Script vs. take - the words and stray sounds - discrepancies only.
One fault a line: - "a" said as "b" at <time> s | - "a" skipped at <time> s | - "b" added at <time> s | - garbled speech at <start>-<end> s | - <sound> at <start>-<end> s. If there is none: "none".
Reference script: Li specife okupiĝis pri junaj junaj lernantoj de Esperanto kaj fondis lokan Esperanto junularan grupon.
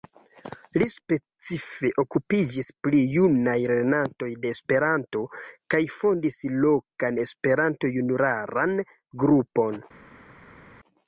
- "junaj" skipped at 3.5 s